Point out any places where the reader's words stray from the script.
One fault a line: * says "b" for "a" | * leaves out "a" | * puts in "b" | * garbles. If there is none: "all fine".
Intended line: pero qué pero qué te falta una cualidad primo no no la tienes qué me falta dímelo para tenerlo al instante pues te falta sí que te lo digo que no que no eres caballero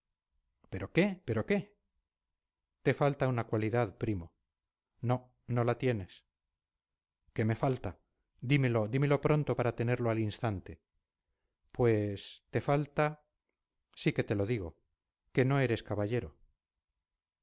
* puts in "dímelo pronto"
* leaves out "que no"